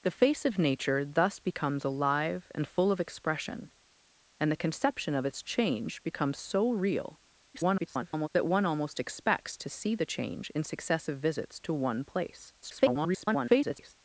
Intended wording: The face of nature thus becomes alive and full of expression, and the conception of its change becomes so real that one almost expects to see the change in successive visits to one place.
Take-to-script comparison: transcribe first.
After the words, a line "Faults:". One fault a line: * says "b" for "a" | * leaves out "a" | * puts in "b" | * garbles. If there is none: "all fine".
The face of nature thus becomes alive and full of expression, and the conception of its change becomes so real [garbled] that one almost expects to see the change in successive visits to one place. [garbled]
Faults:
* garbles
* garbles